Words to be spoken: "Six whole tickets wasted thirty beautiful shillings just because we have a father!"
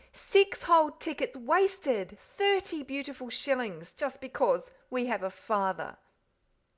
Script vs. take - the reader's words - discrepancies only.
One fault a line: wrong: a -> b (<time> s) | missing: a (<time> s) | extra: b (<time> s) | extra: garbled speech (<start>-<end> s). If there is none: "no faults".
no faults